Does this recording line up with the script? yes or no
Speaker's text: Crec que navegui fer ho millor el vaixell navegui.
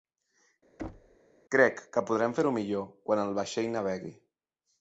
no